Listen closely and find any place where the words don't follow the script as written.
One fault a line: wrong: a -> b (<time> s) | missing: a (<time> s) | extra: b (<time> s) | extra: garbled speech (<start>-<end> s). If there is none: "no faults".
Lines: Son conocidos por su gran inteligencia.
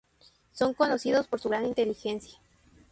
no faults